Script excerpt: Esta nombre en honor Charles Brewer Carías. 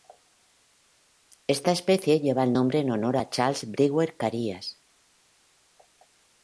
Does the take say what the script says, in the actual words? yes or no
no